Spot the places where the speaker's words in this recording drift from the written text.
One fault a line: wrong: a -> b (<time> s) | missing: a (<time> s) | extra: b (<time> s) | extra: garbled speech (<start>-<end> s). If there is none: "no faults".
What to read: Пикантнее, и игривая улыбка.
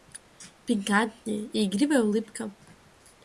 no faults